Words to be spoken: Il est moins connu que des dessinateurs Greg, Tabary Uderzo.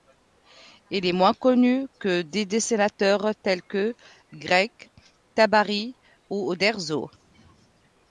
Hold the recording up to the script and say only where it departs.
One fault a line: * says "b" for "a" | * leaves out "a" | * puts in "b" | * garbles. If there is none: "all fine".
* puts in "tels que"
* puts in "ou"